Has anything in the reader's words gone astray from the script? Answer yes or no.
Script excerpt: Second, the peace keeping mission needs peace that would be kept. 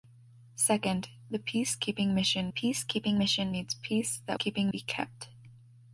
yes